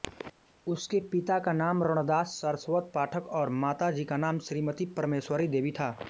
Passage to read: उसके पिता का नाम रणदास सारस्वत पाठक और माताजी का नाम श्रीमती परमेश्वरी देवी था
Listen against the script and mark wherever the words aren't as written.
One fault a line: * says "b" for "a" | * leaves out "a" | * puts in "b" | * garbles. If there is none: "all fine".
all fine